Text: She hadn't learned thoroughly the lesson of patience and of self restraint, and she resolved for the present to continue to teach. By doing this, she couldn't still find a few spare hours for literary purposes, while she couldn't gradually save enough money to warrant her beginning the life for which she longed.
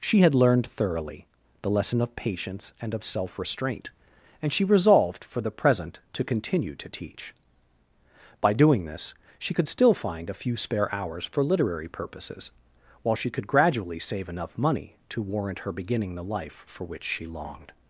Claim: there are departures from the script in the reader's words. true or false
true